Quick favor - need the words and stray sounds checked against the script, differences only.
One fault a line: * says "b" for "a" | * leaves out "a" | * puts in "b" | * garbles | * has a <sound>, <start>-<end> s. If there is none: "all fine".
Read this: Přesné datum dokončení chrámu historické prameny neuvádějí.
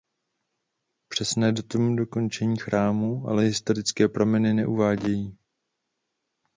* puts in "ale"